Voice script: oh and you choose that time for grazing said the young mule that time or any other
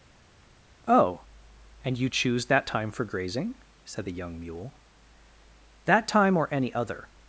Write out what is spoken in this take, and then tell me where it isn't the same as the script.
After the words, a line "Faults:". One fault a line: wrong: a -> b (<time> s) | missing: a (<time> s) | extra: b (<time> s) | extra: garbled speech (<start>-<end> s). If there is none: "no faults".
oh and you choose that time for grazing said the young mule that time or any other
Faults:
no faults